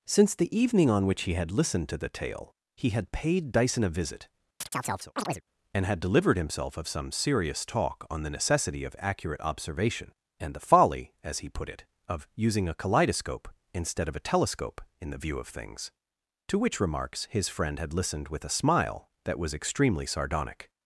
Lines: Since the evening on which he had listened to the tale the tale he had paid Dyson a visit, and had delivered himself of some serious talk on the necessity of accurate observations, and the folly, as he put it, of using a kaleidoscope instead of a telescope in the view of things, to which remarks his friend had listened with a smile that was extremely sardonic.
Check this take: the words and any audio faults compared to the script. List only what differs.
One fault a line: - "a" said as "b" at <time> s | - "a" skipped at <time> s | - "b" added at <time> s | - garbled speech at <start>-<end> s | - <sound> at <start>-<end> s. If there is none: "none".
- "the tale" skipped at 2.5 s
- chirp at 4.6-5.4 s
- "observations" said as "observation" at 9.4 s